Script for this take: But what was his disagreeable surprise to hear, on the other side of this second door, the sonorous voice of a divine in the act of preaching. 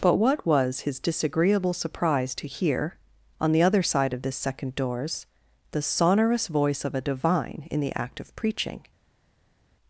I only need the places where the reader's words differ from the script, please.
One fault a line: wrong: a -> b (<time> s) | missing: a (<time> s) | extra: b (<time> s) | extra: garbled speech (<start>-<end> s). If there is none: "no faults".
wrong: door -> doors (4.8 s)